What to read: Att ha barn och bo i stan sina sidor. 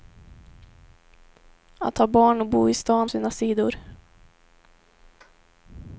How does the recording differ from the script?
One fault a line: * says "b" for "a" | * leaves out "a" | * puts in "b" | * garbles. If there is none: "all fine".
all fine